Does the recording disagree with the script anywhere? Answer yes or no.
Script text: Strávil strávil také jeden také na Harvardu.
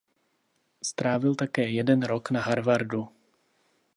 yes